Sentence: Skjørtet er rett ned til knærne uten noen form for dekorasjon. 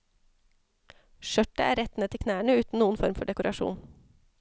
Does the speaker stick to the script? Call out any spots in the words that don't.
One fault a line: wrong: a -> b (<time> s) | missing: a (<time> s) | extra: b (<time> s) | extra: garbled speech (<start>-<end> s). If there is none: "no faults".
no faults